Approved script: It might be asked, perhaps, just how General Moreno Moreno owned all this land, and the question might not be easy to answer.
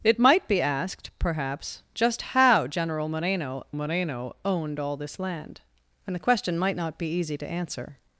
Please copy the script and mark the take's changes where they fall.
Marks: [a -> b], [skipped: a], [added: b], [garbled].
It might be asked, perhaps, just how General Moreno Moreno owned all this land, and the question might not be easy to answer.